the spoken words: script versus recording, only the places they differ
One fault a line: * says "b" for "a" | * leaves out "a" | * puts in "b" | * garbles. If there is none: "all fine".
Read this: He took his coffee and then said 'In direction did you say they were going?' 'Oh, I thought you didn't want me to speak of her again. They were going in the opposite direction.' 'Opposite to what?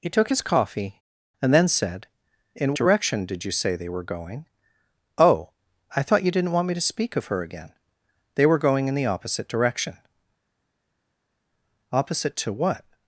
all fine